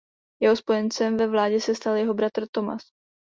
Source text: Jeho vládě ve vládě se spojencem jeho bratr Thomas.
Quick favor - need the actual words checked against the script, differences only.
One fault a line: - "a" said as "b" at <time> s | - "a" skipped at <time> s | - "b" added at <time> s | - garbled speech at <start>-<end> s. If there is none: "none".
- "vládě" said as "spojencem" at 0.6 s
- "spojencem" said as "stal" at 1.8 s